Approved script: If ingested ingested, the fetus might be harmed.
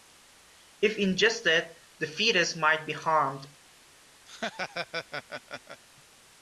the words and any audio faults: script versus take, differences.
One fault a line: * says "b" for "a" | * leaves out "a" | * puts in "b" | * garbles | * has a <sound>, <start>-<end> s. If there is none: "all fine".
* leaves out "ingested"
* has a laugh, 4.3-5.8 s